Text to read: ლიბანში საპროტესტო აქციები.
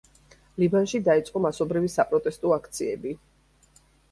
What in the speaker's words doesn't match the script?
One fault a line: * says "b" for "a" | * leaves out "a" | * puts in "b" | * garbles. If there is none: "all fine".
* puts in "დაიწყო მასობრივი"